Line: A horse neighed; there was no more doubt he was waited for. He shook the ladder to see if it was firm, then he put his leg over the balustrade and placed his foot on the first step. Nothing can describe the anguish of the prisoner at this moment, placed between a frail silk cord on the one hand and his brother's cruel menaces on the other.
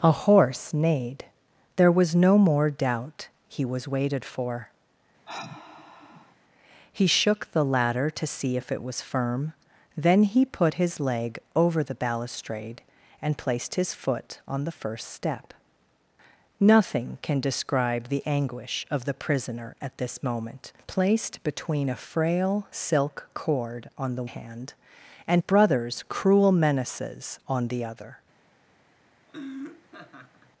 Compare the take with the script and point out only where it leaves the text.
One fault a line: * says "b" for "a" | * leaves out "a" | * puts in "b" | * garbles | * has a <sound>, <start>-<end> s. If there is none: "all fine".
* has a sigh, 5.3-6.4 s
* leaves out "one"
* leaves out "his"
* has a laugh, 29.3-30.5 s